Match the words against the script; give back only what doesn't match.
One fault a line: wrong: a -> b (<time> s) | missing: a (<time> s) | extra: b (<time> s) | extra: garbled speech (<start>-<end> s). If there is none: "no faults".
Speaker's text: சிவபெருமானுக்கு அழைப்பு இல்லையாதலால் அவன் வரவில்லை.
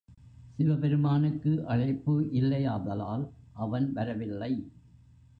no faults